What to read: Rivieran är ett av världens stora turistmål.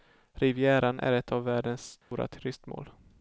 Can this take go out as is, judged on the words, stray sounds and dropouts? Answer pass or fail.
fail